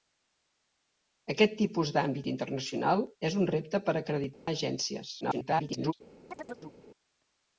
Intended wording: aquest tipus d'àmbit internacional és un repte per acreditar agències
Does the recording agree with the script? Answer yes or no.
no